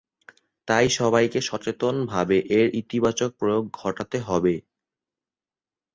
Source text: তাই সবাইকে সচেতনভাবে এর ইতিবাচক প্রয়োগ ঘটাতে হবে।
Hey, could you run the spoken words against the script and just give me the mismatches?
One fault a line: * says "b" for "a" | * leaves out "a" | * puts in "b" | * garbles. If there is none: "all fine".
all fine